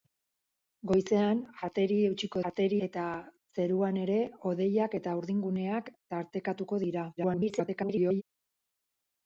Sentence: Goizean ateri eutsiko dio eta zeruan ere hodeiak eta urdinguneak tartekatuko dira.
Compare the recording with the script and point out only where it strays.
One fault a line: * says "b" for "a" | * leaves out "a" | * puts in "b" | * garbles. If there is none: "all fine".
* says "ateri" for "dio"
* garbles